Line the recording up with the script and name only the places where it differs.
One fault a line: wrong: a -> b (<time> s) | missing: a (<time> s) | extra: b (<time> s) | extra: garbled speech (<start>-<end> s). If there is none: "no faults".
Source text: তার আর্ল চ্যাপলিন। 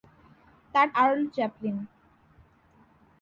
no faults